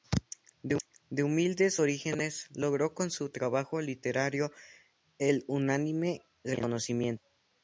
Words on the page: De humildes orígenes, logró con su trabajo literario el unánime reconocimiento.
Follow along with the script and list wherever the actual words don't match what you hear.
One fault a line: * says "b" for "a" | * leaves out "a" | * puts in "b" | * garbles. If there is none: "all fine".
all fine